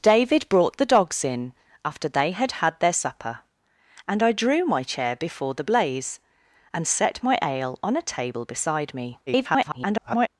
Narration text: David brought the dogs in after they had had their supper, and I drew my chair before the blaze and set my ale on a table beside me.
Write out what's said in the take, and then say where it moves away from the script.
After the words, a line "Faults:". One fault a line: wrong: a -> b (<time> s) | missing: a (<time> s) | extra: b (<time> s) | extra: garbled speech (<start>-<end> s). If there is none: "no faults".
David brought the dogs in after they had had their supper, and I drew my chair before the blaze and set my ale on a table beside me. [garbled]
Faults:
extra: garbled speech (9.3-10.3 s)